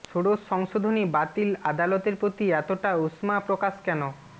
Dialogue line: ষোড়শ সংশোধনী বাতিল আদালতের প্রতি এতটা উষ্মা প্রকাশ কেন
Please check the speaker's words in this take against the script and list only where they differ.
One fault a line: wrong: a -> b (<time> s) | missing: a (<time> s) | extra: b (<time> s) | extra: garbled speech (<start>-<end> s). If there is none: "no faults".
no faults